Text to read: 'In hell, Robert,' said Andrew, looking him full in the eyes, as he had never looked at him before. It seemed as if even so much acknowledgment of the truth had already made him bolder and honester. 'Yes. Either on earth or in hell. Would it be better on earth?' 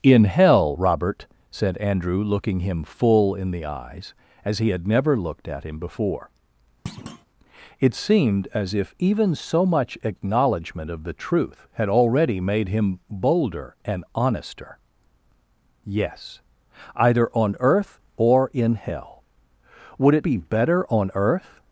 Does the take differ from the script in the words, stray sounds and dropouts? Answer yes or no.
yes